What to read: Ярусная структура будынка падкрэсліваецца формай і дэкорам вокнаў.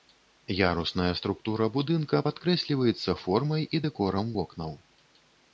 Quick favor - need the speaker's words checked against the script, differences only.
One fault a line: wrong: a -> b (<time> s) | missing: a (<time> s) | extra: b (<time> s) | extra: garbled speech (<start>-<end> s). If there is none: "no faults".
no faults